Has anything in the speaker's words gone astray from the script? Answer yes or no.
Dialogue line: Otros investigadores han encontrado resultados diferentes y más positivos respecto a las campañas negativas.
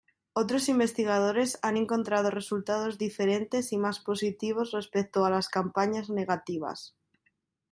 no